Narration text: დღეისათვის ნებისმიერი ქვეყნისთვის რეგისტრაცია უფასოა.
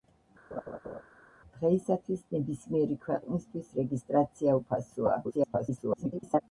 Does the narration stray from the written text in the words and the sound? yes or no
yes